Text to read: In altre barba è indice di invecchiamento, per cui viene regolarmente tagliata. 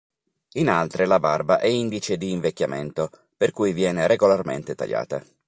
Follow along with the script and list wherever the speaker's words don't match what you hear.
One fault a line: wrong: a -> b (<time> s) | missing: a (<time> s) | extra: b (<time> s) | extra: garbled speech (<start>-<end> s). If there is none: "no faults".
extra: la (1.1 s)